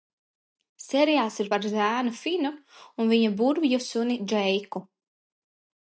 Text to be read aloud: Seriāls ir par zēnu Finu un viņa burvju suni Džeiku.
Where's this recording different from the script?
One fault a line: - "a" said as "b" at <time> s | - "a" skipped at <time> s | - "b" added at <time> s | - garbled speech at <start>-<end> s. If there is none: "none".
none